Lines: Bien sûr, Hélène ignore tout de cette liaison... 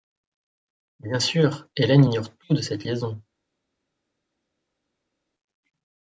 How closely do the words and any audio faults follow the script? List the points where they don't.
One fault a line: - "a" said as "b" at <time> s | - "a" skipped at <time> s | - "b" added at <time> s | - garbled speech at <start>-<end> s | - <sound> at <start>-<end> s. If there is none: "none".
none